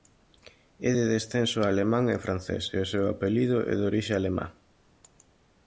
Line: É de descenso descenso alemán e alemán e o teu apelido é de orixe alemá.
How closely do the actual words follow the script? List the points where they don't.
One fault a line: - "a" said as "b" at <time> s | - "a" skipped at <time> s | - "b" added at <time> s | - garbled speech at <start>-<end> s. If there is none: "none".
- "descenso" skipped at 1.6 s
- "alemán" said as "francés" at 2.2 s
- "teu" said as "seu" at 2.9 s